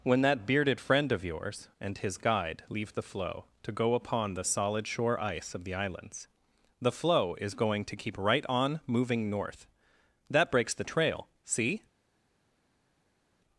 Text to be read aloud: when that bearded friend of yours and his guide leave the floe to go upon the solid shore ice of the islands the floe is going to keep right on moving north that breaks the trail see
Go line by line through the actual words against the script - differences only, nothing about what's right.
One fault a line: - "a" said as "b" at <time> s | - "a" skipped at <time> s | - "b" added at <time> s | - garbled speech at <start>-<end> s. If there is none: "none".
none